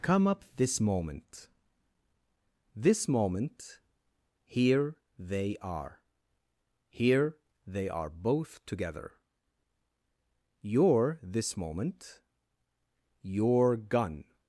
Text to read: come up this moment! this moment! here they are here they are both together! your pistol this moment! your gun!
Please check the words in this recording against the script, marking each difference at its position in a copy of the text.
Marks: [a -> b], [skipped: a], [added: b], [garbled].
come up this moment! this moment! here they are here they are both together! your [skipped: pistol] this moment! your gun!